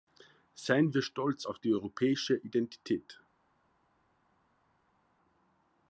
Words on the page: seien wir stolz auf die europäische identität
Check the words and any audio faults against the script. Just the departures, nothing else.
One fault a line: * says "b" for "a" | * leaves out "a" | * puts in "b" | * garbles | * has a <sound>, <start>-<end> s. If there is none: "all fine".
all fine